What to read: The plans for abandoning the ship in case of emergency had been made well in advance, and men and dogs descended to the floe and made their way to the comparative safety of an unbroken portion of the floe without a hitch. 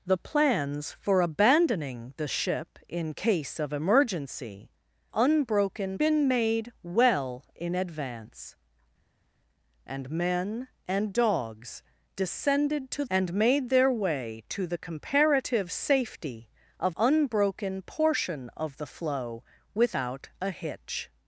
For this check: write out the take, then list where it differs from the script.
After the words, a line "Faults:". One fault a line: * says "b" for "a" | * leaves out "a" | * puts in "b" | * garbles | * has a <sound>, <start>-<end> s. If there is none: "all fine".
The plans for abandoning the ship in case of emergency unbroken been made well in advance, and men and dogs descended to and made their way to the comparative safety of unbroken portion of the floe without a hitch.
Faults:
* says "unbroken" for "had"
* leaves out "the floe"
* leaves out "an"